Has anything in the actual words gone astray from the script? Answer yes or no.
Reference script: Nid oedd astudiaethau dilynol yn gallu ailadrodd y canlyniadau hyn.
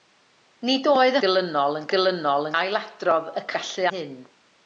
yes